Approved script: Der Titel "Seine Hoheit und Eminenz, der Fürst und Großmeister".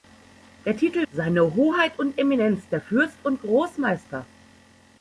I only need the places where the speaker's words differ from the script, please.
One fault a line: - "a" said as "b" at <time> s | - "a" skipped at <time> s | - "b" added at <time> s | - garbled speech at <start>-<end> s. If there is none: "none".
none